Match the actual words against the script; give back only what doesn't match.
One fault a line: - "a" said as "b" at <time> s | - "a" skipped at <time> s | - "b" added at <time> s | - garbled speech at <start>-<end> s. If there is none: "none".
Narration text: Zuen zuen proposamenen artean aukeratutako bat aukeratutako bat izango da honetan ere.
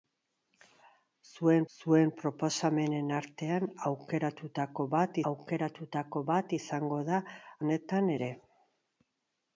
none